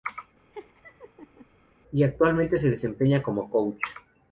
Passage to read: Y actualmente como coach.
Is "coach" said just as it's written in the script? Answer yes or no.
yes